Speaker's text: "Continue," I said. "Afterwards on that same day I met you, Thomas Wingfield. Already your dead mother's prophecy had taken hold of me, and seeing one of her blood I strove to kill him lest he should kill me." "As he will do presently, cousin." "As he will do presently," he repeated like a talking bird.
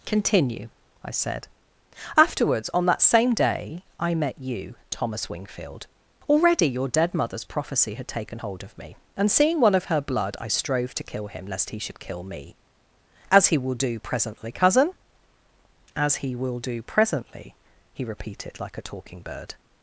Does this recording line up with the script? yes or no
yes